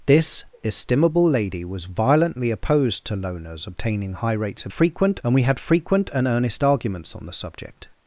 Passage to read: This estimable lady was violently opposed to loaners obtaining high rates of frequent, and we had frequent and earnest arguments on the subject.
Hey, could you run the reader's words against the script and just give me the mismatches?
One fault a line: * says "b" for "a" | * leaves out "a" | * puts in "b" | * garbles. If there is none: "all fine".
all fine